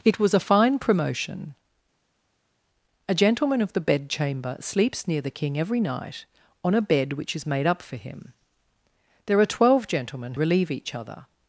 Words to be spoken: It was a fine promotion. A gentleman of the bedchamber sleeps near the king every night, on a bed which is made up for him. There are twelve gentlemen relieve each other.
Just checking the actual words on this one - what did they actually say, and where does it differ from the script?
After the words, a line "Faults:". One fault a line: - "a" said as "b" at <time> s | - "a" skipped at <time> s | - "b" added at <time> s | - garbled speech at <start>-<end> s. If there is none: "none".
It was a fine promotion. A gentleman of the bedchamber sleeps near the king every night, on a bed which is made up for him. There are twelve gentlemen relieve each other.
Faults:
none